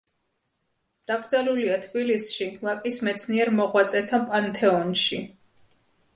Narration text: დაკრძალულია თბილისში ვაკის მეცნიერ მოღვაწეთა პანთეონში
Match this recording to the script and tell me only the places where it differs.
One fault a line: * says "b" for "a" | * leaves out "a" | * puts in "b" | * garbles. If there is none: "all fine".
all fine